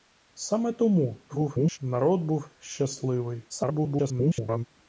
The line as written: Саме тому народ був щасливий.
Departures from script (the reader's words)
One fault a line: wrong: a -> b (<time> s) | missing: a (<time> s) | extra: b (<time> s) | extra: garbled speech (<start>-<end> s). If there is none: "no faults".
extra: garbled speech (1.3-1.8 s)
extra: garbled speech (3.5-4.7 s)